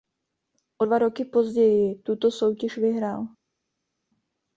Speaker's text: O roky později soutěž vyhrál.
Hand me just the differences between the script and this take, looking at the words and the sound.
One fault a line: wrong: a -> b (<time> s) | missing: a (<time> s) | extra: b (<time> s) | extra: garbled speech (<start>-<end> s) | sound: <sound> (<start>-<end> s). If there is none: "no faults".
extra: dva (0.8 s)
extra: tuto (1.9 s)